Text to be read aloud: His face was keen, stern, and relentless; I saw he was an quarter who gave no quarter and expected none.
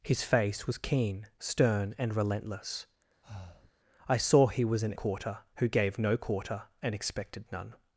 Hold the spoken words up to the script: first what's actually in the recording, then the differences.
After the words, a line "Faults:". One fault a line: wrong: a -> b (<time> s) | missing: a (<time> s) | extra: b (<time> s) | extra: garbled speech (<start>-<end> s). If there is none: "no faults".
His face was keen, stern, and relentless; I saw he was an quarter who gave no quarter and expected none.
Faults:
no faults